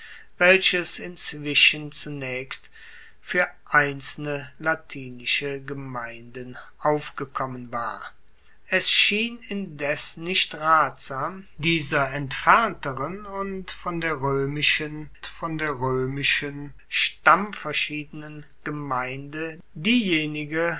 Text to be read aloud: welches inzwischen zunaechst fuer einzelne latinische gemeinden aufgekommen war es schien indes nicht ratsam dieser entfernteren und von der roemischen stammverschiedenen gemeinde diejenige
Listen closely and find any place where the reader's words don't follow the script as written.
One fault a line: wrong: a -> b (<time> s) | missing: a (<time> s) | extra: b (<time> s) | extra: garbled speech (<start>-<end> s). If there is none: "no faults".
extra: von der roemischen (15.2 s)